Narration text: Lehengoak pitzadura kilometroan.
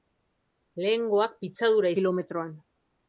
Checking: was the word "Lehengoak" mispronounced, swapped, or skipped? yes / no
no